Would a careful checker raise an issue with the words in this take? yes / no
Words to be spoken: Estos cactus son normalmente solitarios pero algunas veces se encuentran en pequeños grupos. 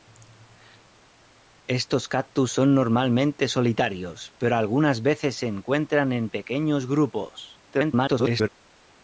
yes